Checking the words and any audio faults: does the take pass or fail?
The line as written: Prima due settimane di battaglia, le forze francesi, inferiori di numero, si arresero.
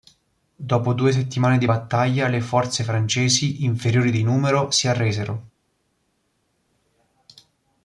fail